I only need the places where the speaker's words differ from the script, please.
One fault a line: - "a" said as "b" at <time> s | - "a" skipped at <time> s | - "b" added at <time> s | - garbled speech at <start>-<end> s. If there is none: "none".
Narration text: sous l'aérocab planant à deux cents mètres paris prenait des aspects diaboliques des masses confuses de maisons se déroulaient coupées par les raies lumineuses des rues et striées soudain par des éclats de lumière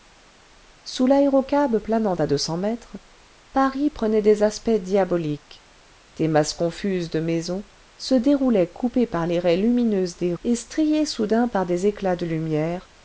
- "rues" skipped at 10.3 s